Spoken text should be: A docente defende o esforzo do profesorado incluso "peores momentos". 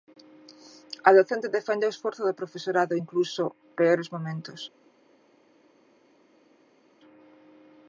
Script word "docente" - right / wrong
right